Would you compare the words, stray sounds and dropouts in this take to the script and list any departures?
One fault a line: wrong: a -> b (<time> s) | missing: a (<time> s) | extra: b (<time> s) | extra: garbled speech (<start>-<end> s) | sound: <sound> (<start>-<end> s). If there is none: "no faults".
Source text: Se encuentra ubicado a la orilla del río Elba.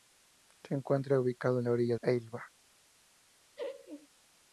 missing: del río (1.9 s)
sound: laugh (3.6-4.1 s)